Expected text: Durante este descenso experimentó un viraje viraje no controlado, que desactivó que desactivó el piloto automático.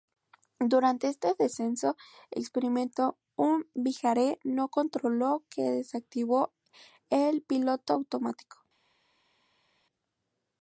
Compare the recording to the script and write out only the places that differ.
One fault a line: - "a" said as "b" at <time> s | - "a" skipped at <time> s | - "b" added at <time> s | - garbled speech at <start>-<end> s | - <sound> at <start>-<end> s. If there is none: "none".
- "viraje" skipped at 4.4 s
- "que desactivó" skipped at 6.5 s